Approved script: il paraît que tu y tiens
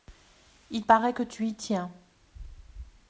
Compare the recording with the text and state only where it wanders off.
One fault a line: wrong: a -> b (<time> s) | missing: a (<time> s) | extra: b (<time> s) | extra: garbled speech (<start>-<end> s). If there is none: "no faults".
no faults